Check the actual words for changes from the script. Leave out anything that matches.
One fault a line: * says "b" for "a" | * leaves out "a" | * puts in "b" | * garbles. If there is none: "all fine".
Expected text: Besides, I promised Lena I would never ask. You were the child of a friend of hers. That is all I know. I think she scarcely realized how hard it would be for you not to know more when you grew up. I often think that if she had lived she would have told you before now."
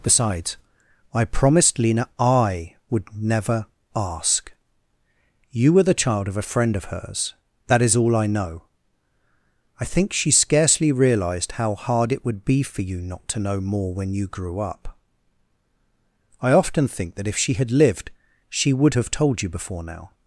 all fine